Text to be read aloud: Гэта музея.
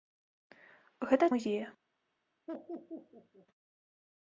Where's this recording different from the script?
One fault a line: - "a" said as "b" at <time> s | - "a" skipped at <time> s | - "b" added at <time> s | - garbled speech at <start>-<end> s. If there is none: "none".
none